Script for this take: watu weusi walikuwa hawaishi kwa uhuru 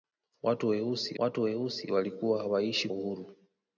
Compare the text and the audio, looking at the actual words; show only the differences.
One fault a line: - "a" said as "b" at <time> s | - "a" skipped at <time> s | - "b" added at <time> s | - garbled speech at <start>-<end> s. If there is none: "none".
- "watu weusi" added at 1.2 s
- "kwa" skipped at 2.9 s